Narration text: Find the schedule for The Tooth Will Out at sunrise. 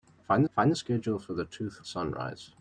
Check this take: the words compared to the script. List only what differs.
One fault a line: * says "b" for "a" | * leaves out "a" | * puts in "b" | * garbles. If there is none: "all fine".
* puts in "find"
* leaves out "Will Out at"